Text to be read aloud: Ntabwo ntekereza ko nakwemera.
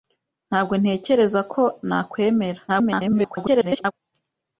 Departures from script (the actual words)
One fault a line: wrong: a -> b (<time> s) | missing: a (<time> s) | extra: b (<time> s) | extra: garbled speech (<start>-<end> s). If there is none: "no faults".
extra: garbled speech (2.7-3.9 s)